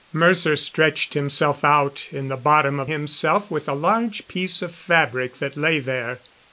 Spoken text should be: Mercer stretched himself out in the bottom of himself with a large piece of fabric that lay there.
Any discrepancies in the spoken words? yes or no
no